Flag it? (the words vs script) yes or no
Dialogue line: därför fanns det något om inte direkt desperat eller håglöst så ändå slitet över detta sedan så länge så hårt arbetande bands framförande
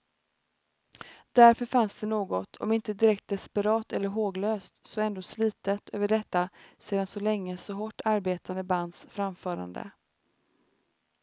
no